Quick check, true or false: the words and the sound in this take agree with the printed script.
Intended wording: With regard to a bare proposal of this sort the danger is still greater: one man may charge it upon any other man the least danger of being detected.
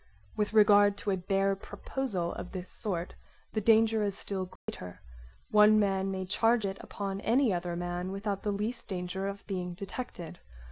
false